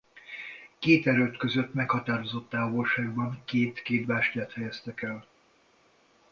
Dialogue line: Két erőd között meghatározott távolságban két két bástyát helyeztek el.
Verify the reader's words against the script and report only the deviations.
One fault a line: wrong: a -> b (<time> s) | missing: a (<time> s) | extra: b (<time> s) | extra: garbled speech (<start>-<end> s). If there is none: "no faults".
no faults